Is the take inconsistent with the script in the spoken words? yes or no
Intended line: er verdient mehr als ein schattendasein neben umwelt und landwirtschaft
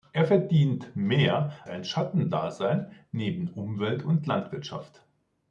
yes